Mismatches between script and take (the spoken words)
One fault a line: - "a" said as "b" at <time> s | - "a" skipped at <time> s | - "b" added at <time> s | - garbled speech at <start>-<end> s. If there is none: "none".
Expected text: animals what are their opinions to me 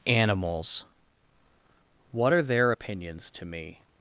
none